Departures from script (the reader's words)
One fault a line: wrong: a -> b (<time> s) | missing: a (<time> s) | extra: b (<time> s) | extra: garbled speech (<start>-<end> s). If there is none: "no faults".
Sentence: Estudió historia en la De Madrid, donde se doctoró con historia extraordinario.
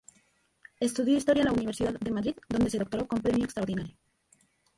extra: Universidad (1.5 s)
wrong: historia -> premio (3.2 s)